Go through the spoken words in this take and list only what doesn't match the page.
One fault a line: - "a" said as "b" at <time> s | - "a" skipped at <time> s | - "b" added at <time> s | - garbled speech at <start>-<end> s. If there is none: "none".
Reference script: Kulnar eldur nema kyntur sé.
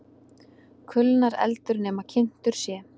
none